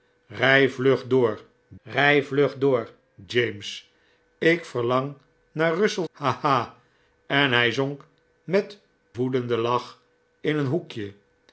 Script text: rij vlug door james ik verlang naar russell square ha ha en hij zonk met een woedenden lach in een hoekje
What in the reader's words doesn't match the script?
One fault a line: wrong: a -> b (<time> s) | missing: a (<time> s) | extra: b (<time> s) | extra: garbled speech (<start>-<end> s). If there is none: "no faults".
extra: rij vlug door (1.8 s)
missing: square (6.1 s)
missing: een (8.8 s)